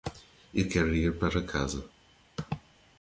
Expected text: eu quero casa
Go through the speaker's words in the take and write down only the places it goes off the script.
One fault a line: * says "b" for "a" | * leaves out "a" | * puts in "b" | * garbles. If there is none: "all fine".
* puts in "ir para"